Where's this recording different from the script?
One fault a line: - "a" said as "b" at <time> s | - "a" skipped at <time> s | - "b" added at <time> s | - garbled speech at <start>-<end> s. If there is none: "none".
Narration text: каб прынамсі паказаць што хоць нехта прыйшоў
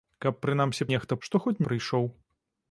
- "паказаць" said as "нехта" at 0.9 s
- "нехта" skipped at 1.6 s